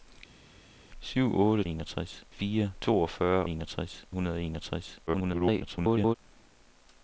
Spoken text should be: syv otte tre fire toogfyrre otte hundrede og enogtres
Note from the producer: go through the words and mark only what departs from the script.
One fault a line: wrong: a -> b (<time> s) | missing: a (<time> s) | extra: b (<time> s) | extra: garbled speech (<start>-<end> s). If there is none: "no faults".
wrong: tre -> enogtres (1.7 s)
wrong: otte -> enogtres (3.5 s)
extra: garbled speech (5.1-6.2 s)